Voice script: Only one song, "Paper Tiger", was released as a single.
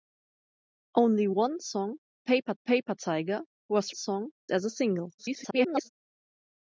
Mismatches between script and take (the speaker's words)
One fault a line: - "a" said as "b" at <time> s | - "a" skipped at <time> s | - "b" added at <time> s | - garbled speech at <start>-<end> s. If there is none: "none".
- "paper" added at 2.6 s
- "released" said as "song" at 3.9 s
- garbled speech at 5.2-5.9 s